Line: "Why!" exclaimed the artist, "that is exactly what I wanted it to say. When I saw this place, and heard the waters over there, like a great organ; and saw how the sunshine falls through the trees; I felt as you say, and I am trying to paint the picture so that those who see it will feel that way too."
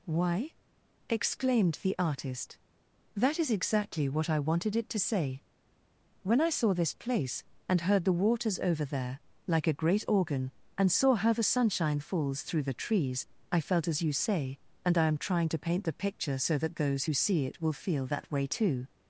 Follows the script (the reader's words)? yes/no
yes